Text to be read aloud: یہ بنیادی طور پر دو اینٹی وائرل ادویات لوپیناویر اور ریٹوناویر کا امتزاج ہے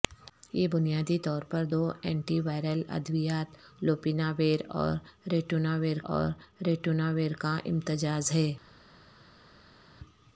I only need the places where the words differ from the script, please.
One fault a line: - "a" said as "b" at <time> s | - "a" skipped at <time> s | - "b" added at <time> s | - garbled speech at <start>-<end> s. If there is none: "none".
- "اور ریٹوناویر" added at 6.1 s